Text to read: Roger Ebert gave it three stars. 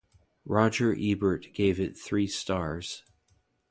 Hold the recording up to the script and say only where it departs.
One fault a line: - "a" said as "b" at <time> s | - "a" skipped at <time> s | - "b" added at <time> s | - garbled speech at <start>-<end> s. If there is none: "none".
none